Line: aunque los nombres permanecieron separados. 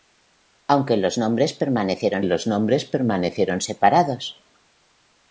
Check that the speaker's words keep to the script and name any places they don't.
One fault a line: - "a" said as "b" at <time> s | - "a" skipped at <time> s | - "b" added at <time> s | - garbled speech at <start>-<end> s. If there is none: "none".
- "los nombres permanecieron" added at 2.2 s